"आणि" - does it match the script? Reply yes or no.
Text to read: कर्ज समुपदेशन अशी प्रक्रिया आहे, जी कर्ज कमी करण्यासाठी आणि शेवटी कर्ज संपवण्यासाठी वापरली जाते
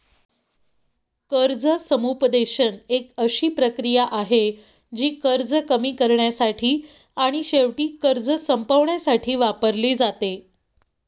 yes